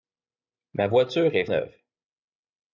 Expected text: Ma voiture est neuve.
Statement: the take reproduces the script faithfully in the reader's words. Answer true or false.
true